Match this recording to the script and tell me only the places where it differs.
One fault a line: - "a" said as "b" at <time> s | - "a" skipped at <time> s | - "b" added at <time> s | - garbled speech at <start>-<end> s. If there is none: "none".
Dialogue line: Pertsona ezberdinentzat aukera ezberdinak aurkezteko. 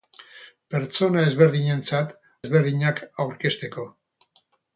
- "aukera" skipped at 2.1 s